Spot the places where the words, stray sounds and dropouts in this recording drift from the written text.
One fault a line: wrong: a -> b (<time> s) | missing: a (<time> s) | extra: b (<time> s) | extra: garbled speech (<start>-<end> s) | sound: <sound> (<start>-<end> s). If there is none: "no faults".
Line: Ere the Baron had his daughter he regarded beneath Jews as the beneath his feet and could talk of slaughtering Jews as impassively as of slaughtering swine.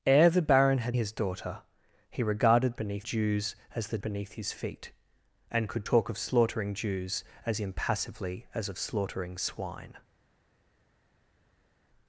no faults